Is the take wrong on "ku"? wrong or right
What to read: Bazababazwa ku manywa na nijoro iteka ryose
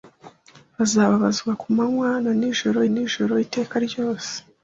right